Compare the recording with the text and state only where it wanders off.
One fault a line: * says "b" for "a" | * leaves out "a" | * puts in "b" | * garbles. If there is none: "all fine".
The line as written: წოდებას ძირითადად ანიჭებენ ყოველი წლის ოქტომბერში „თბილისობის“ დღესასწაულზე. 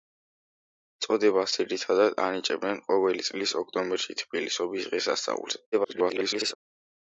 * garbles